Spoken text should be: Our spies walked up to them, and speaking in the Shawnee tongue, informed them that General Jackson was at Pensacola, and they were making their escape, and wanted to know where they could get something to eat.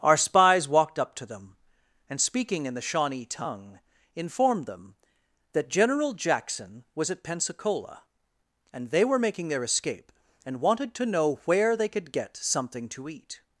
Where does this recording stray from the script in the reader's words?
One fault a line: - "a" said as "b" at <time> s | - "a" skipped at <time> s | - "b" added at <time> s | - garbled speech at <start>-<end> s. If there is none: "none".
none